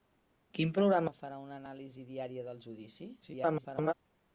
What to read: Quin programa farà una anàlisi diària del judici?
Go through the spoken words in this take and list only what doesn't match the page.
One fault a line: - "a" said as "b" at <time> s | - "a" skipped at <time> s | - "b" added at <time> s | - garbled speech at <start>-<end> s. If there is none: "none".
- garbled speech at 3.2-3.9 s